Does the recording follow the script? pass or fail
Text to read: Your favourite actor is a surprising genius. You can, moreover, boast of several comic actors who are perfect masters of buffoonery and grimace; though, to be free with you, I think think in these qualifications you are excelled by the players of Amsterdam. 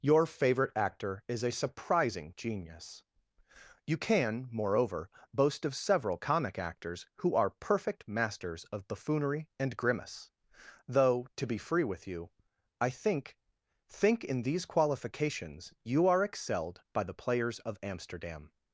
pass